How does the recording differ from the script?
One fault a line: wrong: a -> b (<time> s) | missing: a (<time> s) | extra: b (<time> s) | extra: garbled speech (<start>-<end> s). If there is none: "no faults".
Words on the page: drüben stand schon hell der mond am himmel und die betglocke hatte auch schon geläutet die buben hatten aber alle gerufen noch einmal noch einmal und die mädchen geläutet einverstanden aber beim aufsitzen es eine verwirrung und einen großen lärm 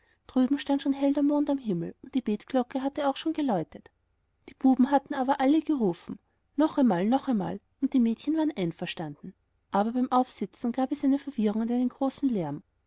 wrong: geläutet -> waren (8.4 s)
extra: gab (10.7 s)